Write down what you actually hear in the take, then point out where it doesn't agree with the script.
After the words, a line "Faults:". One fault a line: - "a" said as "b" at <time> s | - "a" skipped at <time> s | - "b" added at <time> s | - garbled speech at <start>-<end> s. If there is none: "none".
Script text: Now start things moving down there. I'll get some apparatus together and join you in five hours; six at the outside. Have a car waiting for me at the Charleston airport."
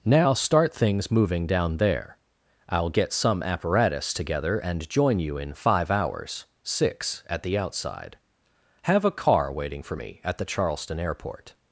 Now start things moving down there. I'll get some apparatus together and join you in five hours; six at the outside. Have a car waiting for me at the Charleston airport."
Faults:
none